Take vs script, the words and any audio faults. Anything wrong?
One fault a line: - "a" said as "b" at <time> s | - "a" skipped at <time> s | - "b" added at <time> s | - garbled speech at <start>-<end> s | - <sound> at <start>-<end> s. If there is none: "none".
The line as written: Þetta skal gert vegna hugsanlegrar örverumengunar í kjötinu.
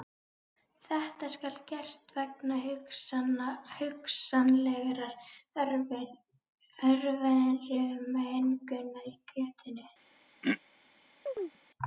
- throat clearing at 10.4-10.6 s
- chirp at 11.3-11.6 s